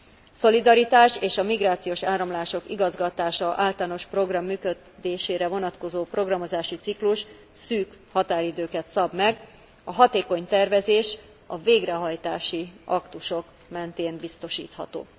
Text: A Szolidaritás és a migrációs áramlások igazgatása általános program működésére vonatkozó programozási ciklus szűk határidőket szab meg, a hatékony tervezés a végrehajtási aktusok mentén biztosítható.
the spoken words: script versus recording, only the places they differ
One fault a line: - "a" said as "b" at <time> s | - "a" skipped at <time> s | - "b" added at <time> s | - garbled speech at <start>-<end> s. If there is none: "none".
none